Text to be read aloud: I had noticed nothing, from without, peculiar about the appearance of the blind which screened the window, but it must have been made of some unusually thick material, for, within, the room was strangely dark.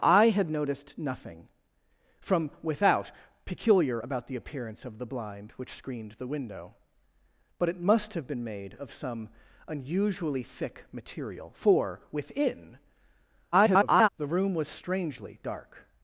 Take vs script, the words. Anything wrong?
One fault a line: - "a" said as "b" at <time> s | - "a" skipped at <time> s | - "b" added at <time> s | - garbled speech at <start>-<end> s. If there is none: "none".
- garbled speech at 13.5-14.1 s